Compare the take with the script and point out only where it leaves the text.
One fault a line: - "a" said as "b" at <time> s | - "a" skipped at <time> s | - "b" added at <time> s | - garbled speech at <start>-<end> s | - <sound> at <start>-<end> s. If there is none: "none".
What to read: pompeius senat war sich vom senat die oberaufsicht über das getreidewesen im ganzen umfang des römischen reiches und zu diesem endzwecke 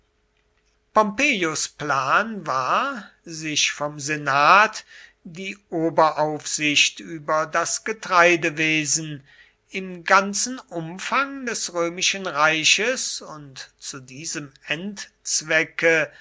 - "senat" said as "plan" at 1.7 s